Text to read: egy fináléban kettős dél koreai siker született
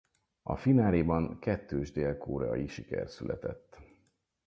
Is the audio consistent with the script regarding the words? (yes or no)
no